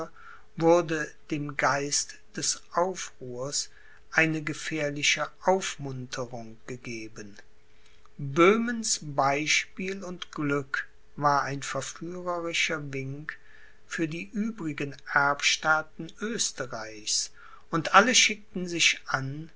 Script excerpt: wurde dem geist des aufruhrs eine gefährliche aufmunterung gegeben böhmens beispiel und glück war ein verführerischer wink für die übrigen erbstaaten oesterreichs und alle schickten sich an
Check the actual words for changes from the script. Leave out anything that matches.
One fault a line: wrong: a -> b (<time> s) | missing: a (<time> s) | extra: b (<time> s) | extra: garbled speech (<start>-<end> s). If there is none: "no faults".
no faults